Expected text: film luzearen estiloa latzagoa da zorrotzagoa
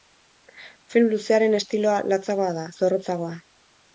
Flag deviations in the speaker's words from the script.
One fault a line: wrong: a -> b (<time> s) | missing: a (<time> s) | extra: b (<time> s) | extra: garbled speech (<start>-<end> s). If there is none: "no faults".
no faults